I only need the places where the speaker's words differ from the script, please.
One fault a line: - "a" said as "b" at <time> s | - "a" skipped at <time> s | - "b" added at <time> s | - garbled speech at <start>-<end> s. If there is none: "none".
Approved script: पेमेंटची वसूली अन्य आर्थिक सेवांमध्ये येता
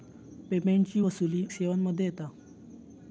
- "अन्य आर्थिक" skipped at 1.4 s